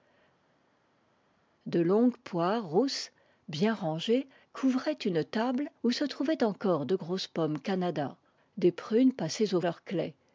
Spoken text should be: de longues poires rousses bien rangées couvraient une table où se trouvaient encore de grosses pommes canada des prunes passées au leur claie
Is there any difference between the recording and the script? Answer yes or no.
no